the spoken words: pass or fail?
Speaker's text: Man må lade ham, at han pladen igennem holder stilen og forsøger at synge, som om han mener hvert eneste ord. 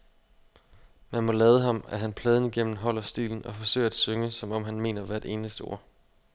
pass